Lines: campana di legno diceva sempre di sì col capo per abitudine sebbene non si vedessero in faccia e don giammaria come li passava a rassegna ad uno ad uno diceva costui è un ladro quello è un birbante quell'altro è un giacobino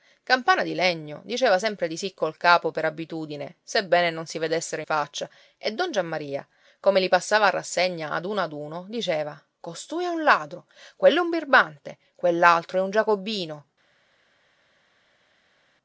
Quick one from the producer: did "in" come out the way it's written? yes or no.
no